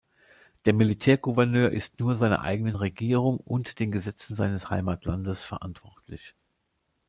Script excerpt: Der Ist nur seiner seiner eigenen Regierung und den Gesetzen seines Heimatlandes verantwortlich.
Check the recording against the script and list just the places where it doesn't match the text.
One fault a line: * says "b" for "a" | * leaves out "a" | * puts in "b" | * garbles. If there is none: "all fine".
* puts in "Militärgouverneur"
* leaves out "seiner"